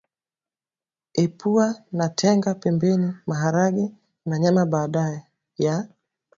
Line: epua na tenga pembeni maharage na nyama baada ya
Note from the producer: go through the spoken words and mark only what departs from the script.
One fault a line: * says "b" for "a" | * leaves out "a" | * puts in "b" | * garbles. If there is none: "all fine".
all fine